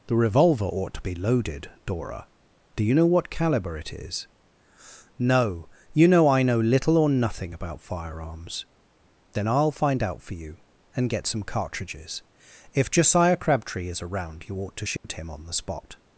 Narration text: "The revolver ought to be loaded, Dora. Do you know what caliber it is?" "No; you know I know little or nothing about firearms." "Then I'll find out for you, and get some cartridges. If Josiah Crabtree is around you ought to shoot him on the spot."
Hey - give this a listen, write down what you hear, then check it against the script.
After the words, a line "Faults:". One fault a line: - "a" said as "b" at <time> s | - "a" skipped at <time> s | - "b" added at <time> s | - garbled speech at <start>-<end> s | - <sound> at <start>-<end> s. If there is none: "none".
"The revolver ought to be loaded, Dora. Do you know what caliber it is?" "No; you know I know little or nothing about firearms." "Then I'll find out for you, and get some cartridges. If Josiah Crabtree is around you ought to shoot him on the spot."
Faults:
- dropout at 15.0-15.0 s